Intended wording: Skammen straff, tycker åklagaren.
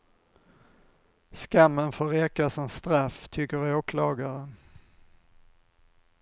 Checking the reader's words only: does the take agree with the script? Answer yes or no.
no